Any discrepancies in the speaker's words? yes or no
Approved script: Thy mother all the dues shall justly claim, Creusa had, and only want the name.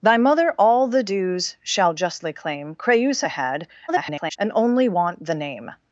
yes